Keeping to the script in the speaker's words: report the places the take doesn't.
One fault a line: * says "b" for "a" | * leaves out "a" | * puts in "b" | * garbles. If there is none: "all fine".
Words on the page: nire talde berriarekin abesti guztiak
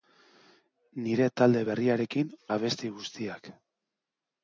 all fine